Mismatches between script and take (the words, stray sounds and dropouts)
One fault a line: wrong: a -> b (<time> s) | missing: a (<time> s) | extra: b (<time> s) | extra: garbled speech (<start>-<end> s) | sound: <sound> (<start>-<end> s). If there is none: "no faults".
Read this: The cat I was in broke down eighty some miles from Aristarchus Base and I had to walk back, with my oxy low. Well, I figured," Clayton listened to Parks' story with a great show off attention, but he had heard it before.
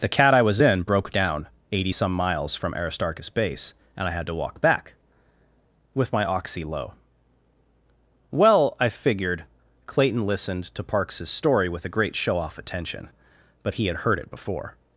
no faults